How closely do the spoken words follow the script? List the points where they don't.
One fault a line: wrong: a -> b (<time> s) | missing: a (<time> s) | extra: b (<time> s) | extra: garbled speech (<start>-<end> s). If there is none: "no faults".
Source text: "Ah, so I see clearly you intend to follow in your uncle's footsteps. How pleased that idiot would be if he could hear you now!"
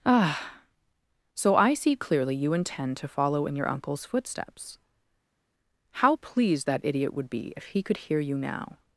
no faults